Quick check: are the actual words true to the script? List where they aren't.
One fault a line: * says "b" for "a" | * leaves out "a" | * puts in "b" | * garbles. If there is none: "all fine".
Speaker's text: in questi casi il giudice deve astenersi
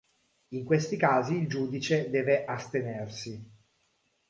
all fine